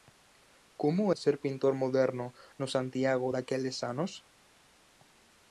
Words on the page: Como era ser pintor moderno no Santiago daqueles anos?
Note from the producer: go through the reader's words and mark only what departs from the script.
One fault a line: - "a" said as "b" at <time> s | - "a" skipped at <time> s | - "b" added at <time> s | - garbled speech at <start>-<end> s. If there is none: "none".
- "era" skipped at 1.1 s